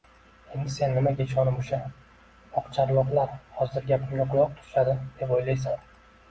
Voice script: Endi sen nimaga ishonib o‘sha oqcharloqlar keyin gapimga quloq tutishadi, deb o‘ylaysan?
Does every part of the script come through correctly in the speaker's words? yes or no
no